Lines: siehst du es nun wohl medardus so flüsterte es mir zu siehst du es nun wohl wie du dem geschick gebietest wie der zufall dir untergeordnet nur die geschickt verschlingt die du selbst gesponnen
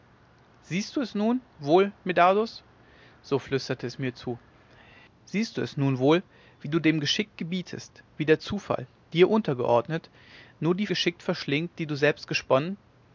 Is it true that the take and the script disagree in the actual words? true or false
false